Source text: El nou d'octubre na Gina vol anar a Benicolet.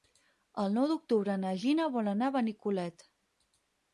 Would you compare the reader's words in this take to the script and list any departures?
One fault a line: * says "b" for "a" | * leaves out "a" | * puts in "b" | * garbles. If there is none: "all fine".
all fine